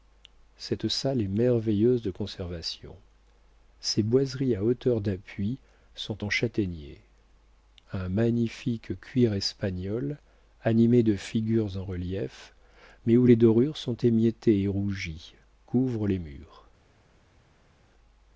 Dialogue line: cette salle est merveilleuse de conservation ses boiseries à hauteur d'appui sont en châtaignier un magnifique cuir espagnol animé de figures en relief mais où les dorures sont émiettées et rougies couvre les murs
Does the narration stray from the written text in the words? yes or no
no